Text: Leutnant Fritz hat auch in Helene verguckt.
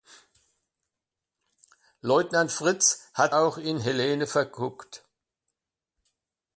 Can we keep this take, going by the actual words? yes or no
yes